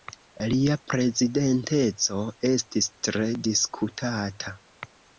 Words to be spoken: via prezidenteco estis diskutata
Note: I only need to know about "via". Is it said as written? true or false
false